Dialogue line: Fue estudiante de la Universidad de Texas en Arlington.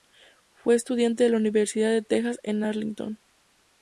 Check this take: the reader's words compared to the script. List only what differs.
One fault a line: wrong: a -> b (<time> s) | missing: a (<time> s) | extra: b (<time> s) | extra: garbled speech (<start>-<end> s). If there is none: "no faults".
no faults